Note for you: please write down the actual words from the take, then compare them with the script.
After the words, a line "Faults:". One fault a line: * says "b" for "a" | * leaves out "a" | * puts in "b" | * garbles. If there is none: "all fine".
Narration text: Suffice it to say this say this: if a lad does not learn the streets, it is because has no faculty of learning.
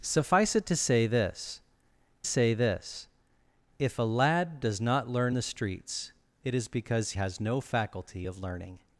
Suffice it to say this say this: if a lad does not learn the streets, it is because has no faculty of learning.
Faults:
all fine